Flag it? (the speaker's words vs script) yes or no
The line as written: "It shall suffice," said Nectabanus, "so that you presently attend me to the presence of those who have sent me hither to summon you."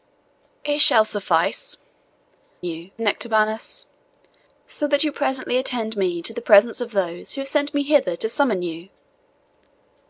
yes